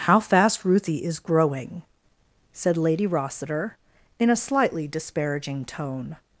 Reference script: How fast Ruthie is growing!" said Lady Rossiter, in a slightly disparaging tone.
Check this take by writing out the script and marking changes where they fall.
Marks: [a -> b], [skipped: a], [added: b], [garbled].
How fast Ruthie is growing!" said Lady Rossiter, in a slightly disparaging tone.